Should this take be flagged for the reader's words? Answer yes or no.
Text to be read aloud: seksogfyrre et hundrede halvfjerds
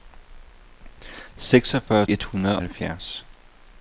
no